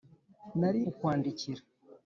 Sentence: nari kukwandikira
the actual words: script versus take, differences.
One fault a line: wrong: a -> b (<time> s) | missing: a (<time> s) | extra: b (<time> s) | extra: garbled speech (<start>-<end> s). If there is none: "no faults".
no faults